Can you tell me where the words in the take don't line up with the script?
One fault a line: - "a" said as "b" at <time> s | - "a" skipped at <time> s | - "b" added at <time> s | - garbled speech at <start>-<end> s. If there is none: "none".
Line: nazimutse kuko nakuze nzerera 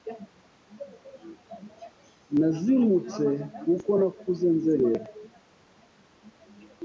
none